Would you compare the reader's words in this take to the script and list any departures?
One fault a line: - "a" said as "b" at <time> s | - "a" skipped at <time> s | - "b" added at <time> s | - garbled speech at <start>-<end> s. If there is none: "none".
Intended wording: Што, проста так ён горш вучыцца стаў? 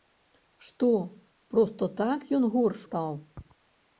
- "вучыцца" skipped at 2.8 s